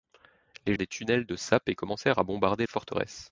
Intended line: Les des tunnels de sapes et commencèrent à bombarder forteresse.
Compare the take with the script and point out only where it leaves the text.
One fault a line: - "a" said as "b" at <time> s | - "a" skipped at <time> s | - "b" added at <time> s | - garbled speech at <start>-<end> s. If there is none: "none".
none